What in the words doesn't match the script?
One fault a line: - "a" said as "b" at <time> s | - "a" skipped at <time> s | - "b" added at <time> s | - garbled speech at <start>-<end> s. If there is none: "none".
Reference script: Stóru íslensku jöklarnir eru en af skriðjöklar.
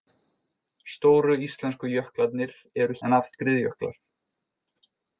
none